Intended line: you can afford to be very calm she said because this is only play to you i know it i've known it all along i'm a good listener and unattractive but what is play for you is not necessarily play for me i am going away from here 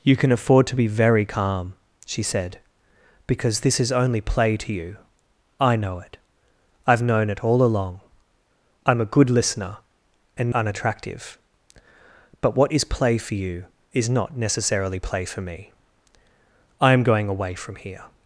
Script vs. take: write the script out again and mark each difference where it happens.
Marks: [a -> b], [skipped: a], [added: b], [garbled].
you can afford to be very calm she said because this is only play to you i know it i've known it all along i'm a good listener and unattractive but what is play for you is not necessarily play for me i am going away from here